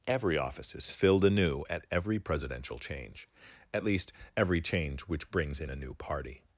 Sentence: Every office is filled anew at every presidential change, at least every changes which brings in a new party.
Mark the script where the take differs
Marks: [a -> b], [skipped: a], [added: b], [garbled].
Every office is filled anew at every presidential change, at least every [changes -> change] which brings in a new party.